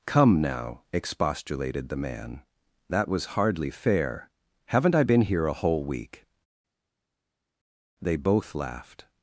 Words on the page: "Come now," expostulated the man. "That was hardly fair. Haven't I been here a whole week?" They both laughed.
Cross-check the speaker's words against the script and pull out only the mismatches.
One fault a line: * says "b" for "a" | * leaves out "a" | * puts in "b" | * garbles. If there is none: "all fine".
all fine